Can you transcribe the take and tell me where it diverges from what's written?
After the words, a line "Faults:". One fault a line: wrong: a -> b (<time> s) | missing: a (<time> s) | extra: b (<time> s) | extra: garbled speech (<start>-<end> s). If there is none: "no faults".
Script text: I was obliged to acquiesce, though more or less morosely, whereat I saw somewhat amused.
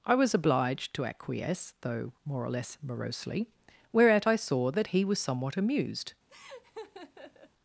I was obliged to acquiesce, though more or less morosely, whereat I saw that he was somewhat amused.
Faults:
extra: that he was (4.7 s)